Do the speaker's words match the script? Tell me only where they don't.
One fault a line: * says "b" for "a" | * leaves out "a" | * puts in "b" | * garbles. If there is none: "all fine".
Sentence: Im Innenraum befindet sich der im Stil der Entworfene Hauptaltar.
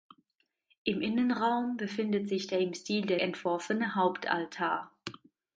all fine